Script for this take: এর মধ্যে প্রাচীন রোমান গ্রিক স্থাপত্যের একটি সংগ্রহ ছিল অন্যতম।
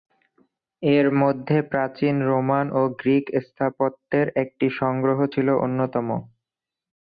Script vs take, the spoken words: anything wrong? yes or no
yes